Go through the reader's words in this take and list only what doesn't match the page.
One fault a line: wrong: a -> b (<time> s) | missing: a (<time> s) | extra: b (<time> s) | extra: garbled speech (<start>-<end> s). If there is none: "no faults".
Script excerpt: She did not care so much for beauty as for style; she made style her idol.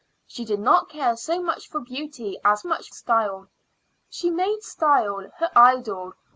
wrong: for -> much (2.7 s)